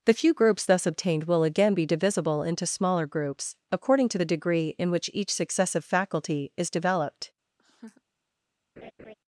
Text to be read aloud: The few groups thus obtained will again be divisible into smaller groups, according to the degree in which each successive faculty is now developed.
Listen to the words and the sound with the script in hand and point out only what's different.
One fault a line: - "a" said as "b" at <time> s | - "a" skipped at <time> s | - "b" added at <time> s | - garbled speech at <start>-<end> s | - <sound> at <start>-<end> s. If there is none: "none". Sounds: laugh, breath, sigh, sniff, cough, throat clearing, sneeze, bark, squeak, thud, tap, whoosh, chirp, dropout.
- "now" skipped at 6.7 s
- laugh at 7.6-8.0 s
- laugh at 8.8-9.1 s